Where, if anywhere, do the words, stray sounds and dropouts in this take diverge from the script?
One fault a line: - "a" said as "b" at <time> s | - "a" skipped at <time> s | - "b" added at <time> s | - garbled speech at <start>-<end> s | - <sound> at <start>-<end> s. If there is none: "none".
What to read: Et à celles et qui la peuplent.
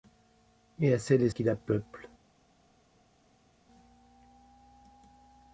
none